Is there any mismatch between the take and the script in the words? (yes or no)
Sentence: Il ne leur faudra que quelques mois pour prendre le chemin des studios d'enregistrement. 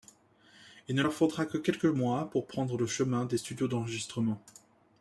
no